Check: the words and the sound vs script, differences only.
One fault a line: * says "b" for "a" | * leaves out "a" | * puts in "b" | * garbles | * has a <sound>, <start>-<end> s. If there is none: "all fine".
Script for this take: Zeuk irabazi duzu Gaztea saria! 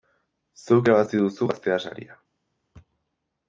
all fine